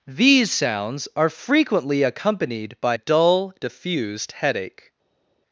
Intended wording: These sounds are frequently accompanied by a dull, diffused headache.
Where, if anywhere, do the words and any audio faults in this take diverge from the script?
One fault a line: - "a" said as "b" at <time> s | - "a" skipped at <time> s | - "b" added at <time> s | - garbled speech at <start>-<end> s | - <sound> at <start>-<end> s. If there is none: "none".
- "a" skipped at 3.0 s